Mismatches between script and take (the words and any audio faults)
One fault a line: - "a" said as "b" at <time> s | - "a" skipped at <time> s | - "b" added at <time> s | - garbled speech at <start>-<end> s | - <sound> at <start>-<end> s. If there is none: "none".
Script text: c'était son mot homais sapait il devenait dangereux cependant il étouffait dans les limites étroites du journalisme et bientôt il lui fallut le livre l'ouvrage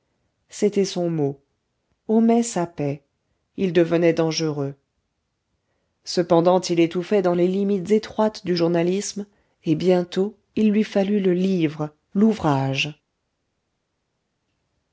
none